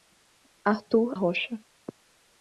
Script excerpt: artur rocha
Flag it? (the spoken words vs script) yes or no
no